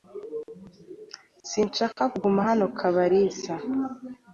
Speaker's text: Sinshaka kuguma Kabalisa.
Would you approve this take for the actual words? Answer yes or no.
no